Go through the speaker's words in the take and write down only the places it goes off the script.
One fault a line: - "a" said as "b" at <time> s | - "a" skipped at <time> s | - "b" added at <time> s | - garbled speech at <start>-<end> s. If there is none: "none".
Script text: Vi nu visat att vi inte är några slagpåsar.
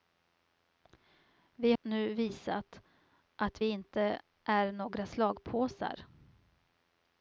none